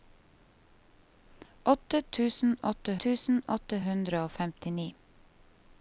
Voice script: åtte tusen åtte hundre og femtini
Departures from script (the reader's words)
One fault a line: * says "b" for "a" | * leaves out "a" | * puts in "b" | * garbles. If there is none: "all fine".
* puts in "tusen åtte"